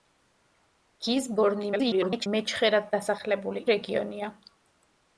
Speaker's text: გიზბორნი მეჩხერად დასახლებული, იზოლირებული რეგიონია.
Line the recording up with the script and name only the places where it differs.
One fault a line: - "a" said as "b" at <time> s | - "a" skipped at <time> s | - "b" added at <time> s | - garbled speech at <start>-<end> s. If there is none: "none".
- garbled speech at 1.7-2.3 s
- "იზოლირებული" skipped at 3.6 s